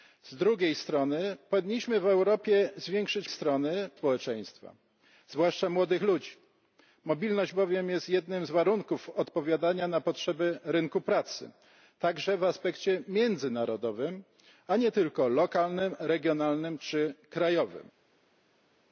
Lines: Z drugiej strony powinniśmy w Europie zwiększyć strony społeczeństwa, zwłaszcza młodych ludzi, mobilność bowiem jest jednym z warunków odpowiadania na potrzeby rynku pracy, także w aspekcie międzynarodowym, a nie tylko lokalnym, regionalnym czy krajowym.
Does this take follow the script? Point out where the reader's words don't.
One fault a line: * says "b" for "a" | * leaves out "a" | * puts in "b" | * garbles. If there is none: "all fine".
all fine